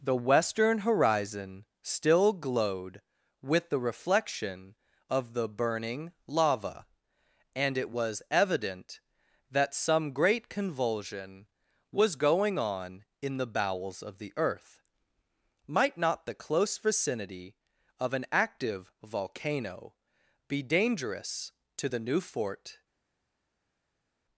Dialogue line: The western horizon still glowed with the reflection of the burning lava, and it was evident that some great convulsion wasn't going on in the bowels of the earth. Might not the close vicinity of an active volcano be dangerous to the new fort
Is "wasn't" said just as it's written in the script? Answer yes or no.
no